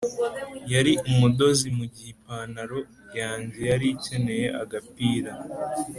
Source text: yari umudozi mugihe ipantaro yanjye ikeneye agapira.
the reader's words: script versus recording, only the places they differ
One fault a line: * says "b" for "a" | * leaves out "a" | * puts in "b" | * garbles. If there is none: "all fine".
* puts in "yari"